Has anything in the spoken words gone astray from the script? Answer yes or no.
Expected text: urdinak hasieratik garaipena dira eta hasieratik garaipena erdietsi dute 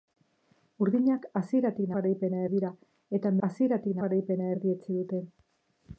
no